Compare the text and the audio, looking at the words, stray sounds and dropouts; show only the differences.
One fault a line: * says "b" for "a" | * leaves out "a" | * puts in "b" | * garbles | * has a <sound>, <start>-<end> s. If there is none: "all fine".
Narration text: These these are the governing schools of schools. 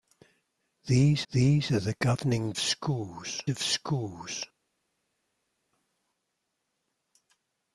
all fine